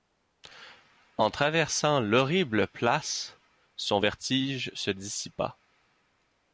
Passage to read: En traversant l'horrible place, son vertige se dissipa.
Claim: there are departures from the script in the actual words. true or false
false